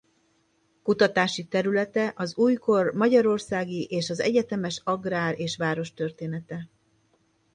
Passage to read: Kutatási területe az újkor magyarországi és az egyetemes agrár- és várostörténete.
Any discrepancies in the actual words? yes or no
no